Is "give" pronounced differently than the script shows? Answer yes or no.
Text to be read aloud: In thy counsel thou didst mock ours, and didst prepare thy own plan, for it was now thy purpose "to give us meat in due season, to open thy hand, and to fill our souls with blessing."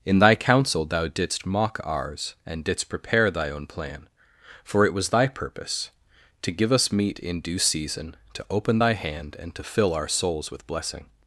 no